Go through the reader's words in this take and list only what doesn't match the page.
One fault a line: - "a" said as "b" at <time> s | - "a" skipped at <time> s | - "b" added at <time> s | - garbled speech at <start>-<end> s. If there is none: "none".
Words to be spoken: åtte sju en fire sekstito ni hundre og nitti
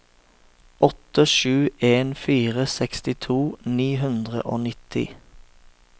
none